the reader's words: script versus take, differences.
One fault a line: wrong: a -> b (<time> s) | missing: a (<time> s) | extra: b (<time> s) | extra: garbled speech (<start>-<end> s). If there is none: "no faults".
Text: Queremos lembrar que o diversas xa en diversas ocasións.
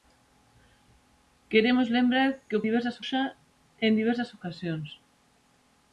no faults